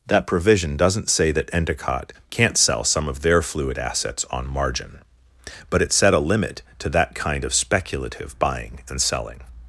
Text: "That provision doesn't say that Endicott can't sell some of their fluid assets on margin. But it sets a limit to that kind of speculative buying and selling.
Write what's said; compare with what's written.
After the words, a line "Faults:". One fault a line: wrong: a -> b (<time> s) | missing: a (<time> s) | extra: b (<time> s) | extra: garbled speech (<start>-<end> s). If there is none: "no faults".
"That provision doesn't say that Endicott can't sell some of their fluid assets on margin. But it set a limit to that kind of speculative buying and selling.
Faults:
wrong: sets -> set (5.9 s)